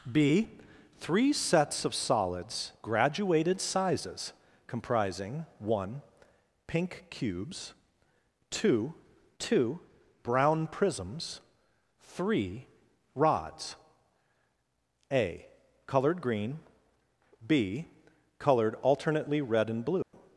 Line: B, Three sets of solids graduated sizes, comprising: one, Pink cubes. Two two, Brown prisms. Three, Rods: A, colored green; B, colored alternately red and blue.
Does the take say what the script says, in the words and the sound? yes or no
no